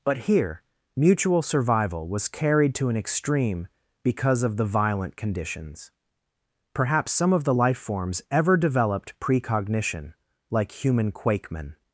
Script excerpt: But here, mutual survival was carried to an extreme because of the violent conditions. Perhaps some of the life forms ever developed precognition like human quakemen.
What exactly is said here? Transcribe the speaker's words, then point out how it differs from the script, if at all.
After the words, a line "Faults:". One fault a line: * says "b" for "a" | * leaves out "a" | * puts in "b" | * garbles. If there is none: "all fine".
But here, mutual survival was carried to an extreme because of the violent conditions. Perhaps some of the life forms ever developed precognition like human quakemen.
Faults:
all fine